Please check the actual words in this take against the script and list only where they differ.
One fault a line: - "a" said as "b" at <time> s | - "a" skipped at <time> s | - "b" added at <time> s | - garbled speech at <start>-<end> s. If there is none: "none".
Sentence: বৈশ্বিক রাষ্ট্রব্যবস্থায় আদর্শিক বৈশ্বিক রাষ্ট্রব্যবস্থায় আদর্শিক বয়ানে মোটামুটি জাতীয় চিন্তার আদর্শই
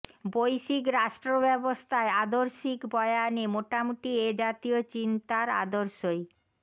- "বৈশ্বিক রাষ্ট্রব্যবস্থায় আদর্শিক" skipped at 2.8 s
- "এ" added at 4.2 s